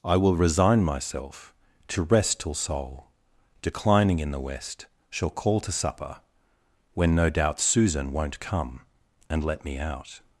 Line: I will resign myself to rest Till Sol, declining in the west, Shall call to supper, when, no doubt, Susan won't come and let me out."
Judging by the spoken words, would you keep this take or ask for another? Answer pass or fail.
pass